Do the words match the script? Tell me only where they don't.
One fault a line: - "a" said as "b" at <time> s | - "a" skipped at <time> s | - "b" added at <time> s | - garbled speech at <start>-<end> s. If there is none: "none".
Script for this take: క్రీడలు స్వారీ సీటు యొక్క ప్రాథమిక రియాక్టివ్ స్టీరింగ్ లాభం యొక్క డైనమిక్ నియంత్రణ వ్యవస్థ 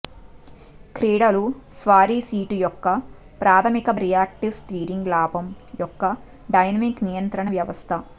none